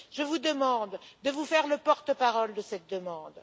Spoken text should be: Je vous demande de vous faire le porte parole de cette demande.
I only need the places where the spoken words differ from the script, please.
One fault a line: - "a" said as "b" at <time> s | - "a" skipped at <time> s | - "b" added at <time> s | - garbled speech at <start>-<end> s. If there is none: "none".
none